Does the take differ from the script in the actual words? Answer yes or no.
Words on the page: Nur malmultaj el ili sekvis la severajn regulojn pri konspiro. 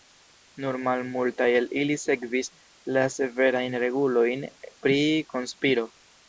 no